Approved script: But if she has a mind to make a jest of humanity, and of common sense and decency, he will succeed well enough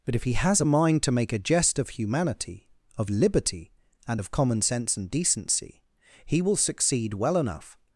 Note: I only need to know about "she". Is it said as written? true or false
false